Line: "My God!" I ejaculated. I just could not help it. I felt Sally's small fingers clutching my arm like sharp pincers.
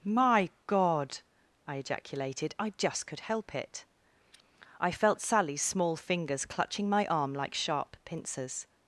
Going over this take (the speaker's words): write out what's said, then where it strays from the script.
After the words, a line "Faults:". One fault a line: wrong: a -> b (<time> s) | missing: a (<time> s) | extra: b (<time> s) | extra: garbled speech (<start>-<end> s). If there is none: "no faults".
"My God!" I ejaculated. I just could help it. I felt Sally's small fingers clutching my arm like sharp pincers.
Faults:
missing: not (3.2 s)